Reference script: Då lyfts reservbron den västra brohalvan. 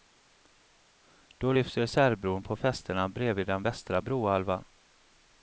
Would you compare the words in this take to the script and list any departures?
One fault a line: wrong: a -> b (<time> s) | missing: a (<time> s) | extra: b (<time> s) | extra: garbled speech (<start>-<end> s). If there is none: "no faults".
extra: på fästena bredvid (2.4 s)